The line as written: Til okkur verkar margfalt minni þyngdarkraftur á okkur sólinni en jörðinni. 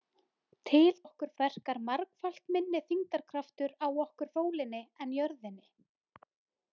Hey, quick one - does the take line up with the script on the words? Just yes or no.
yes